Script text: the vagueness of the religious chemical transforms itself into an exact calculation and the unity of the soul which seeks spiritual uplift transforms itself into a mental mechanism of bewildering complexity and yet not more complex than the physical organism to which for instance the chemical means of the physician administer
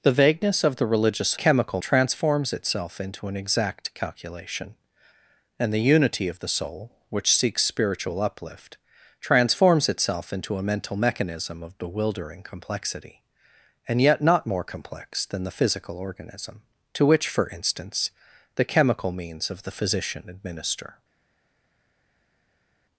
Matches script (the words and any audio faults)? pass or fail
pass